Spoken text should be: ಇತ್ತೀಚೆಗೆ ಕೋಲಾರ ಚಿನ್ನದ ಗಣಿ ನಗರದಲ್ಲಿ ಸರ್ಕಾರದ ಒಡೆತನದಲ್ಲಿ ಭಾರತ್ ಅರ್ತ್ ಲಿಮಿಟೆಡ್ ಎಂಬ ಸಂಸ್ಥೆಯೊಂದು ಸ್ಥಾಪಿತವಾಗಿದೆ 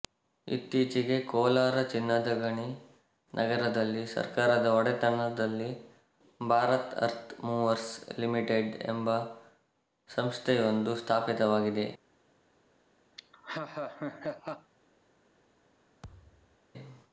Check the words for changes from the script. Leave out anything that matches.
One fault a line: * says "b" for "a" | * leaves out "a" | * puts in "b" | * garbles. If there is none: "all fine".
* puts in "ಮೂವರ್ಸ್"